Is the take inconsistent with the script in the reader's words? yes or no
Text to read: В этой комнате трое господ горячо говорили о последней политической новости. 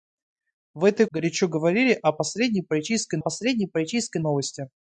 yes